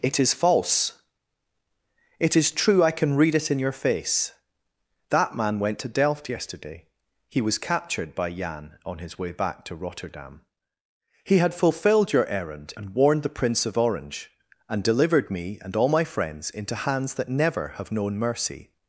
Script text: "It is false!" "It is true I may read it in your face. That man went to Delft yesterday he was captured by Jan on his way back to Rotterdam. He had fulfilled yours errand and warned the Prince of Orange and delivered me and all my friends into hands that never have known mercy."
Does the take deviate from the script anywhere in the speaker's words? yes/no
yes